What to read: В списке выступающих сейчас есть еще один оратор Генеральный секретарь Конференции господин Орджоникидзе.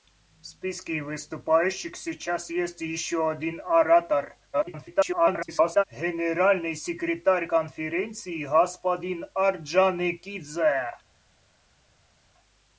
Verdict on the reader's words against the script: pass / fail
fail